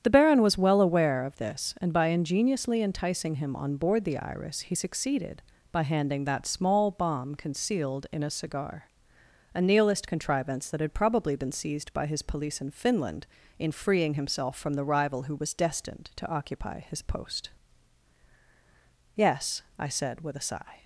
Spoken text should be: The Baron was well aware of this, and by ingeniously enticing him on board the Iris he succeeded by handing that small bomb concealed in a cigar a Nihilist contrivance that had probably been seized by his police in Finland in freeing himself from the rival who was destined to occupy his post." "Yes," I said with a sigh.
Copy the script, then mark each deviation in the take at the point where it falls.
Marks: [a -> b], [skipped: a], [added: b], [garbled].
The Baron was well aware of this, and by ingeniously enticing him on board the Iris he succeeded by handing that small bomb concealed in a cigar a Nihilist contrivance that had probably been seized by his police in Finland in freeing himself from the rival who was destined to occupy his post." "Yes," I said with a sigh.